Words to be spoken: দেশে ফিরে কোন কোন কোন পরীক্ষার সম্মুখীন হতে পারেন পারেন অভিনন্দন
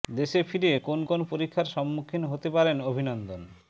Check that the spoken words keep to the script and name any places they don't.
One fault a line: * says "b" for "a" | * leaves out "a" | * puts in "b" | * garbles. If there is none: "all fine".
* leaves out "কোন"
* leaves out "পারেন"